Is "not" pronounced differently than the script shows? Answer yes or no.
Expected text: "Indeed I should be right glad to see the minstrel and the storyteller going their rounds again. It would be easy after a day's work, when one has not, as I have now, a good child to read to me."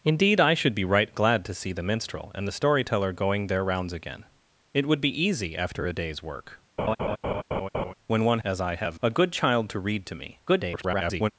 yes